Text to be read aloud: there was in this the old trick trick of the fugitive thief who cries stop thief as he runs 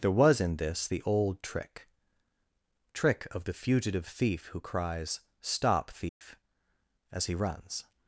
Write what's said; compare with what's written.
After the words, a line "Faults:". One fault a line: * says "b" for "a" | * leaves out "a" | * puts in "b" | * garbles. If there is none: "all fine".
there was in this the old trick trick of the fugitive thief who cries stop thief as he runs
Faults:
all fine